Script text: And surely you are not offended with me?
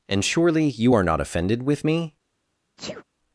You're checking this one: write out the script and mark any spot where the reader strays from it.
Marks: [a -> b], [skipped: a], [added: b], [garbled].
And surely you are not offended with me?